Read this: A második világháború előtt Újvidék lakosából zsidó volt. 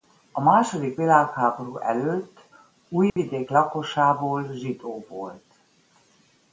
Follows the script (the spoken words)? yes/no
yes